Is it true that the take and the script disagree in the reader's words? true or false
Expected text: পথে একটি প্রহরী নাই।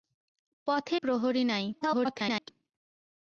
true